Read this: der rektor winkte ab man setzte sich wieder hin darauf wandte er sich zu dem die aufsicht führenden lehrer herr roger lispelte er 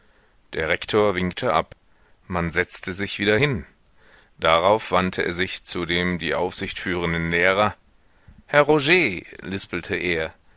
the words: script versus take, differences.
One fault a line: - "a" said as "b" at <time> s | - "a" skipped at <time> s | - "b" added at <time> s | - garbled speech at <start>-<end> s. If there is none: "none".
none